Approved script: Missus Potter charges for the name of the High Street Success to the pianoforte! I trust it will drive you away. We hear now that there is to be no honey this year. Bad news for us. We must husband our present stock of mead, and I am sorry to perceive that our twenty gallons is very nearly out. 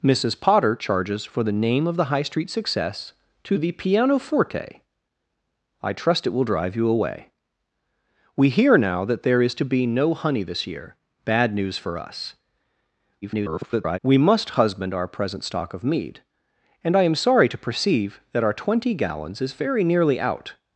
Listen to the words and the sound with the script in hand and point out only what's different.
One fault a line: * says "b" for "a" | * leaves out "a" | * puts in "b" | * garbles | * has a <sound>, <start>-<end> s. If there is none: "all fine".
* garbles